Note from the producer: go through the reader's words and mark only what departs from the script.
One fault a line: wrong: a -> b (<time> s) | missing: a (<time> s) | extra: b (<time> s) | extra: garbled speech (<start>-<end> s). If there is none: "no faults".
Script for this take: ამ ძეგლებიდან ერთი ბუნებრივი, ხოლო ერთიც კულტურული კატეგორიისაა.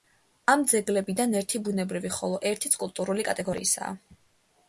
no faults